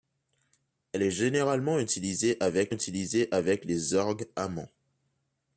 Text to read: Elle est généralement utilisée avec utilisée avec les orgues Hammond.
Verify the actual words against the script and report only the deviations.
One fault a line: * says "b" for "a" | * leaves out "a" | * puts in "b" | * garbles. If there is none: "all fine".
all fine